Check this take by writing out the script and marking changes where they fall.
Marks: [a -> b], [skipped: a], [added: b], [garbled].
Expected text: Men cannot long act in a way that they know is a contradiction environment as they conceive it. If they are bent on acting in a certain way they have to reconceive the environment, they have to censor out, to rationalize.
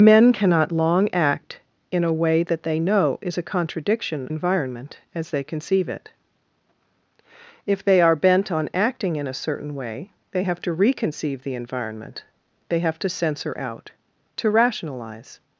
Men cannot long act in a way that they know is a contradiction environment as they conceive it. If they are bent on acting in a certain way they have to reconceive the environment, they have to censor out, to rationalize.